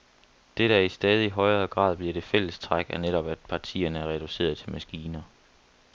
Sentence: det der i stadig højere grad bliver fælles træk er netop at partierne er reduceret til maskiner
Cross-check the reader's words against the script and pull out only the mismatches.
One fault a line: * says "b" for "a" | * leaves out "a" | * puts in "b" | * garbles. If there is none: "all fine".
* puts in "det"